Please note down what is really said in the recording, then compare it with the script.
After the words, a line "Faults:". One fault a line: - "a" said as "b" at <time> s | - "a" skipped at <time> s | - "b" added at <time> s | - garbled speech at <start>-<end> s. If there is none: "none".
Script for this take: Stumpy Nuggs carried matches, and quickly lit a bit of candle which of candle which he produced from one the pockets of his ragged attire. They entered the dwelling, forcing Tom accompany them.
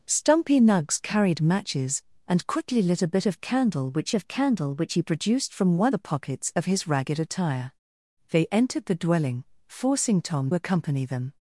Stumpy Nuggs carried matches, and quickly lit a bit of candle which of candle which he produced from one the pockets of his ragged attire. They entered the dwelling, forcing Tom accompany them.
Faults:
none